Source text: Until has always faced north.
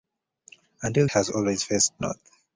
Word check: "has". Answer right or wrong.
right